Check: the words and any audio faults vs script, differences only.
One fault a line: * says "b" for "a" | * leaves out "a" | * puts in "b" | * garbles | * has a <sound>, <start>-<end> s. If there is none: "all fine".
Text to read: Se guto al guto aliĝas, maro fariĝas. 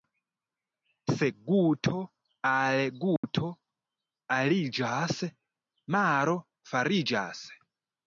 * has a dropout, 3.2-3.2 s